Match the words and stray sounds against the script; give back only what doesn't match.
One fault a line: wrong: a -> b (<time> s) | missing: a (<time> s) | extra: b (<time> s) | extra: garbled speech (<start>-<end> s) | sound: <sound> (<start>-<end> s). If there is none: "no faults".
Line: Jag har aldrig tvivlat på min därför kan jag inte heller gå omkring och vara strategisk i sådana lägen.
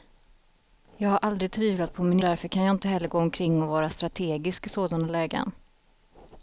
no faults